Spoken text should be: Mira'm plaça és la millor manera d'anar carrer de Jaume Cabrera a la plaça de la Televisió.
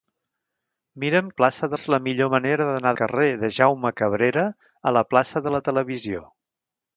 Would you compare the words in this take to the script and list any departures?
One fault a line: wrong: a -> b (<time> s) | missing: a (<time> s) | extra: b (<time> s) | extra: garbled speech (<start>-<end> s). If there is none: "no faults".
no faults